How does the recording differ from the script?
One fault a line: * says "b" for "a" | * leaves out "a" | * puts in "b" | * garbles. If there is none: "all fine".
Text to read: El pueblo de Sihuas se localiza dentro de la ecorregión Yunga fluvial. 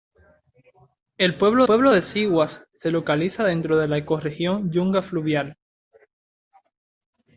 * puts in "pueblo"